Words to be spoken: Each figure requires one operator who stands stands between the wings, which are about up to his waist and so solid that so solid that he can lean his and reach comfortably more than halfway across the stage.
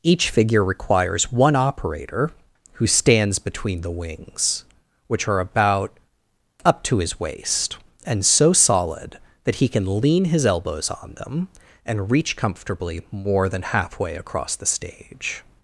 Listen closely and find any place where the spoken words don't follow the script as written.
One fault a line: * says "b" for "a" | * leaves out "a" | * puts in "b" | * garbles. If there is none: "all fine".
* leaves out "stands"
* leaves out "so solid that"
* puts in "elbows on them"